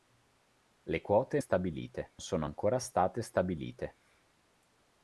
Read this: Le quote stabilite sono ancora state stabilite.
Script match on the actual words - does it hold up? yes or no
yes